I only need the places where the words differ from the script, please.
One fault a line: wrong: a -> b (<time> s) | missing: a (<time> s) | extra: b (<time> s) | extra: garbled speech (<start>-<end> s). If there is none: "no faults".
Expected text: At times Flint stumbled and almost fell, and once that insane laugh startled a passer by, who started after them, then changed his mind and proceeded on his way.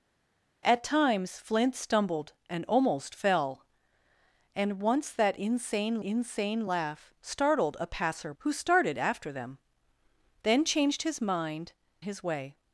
extra: insane (6.0 s)
missing: by (8.3 s)
missing: and proceeded on (11.7 s)